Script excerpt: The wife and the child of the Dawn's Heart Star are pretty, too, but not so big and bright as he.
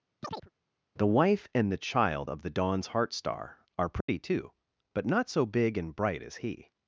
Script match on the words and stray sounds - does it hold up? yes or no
no